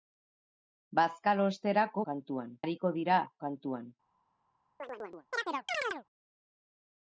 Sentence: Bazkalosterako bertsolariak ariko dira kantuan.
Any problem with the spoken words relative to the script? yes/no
yes